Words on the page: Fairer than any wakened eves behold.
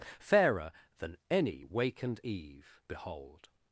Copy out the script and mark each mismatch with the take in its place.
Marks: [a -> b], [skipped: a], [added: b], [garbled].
Fairer than any wakened [eves -> eve] behold.